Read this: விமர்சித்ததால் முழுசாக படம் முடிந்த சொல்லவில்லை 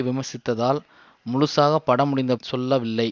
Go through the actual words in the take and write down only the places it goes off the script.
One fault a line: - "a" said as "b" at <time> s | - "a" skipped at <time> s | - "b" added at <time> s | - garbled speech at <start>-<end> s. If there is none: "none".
none